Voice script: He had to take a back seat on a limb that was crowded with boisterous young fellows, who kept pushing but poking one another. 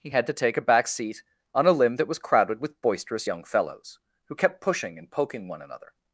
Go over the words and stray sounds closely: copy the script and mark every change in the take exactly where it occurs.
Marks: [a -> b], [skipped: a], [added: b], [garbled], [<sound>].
He had to take a back seat on a limb that was crowded with boisterous young fellows, who kept pushing [but -> and] poking one another.